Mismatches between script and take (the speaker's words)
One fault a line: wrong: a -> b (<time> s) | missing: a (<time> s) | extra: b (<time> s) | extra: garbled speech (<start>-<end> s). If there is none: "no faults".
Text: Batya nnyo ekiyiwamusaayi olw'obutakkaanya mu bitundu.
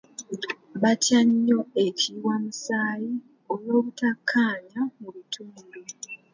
no faults